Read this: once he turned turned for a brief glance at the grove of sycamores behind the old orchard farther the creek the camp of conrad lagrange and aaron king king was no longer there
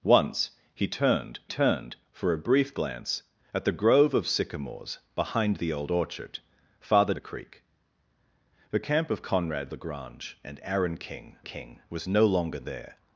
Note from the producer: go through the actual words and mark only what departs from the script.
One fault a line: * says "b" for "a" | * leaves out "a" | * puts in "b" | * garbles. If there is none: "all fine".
all fine